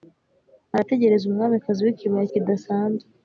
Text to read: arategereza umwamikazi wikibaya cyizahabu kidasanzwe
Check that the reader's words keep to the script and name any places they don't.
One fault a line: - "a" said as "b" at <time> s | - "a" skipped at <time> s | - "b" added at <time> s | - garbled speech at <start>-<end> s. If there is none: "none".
- "cyizahabu" skipped at 2.3 s